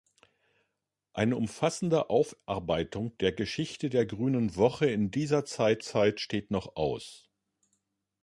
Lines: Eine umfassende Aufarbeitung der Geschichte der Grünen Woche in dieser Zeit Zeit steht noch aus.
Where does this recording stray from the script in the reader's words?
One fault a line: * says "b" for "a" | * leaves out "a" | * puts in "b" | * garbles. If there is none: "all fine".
all fine